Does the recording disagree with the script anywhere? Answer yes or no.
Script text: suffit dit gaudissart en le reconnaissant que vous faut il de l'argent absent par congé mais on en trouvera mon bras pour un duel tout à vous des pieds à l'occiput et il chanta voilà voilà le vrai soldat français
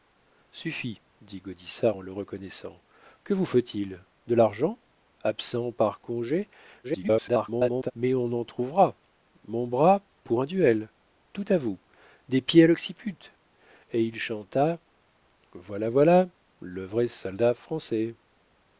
yes